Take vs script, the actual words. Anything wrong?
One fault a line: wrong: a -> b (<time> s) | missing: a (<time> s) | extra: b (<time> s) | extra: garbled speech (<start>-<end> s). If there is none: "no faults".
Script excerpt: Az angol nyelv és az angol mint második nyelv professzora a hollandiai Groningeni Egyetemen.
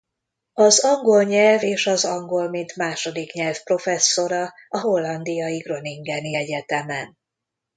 no faults